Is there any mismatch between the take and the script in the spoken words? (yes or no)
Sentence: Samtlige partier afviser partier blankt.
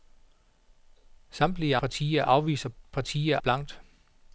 no